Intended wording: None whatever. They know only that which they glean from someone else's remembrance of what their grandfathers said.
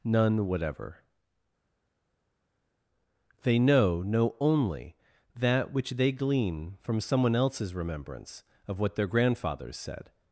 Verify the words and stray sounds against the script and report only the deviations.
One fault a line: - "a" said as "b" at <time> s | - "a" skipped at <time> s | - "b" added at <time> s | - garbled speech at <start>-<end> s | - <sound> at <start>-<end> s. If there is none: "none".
- "know" added at 4.0 s